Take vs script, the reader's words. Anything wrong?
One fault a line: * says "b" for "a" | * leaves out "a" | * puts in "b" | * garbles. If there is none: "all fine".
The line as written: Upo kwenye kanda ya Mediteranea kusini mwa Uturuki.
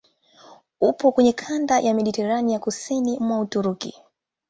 all fine